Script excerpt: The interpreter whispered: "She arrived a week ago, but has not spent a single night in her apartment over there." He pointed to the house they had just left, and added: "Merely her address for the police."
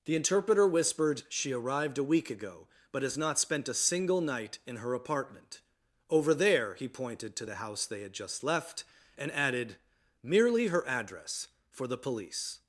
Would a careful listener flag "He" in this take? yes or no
no